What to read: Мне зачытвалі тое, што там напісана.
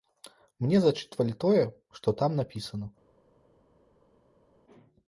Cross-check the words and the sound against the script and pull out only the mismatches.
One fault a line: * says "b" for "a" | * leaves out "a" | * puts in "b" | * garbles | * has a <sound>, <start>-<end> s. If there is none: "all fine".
all fine